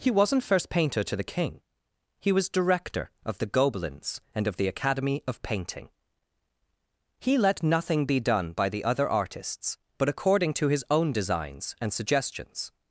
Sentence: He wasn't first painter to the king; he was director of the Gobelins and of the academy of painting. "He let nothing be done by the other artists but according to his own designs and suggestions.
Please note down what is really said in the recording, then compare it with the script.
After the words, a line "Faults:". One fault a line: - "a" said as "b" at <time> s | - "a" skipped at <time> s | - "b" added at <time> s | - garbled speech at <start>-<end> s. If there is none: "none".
He wasn't first painter to the king; he was director of the Gobelins and of the academy of painting. "He let nothing be done by the other artists but according to his own designs and suggestions.
Faults:
none